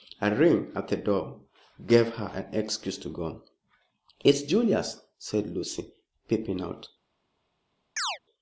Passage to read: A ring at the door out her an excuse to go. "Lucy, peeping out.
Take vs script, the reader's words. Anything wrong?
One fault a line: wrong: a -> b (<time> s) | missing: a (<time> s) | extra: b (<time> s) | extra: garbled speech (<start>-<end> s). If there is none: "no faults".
wrong: out -> gave (1.9 s)
extra: It's Julius said (4.2 s)